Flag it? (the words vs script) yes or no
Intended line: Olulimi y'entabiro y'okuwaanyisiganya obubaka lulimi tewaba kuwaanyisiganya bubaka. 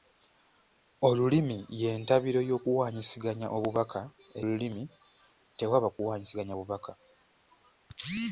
no